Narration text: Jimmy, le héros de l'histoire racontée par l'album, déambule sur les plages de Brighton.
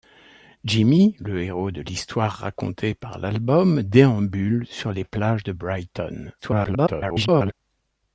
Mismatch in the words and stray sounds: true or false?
true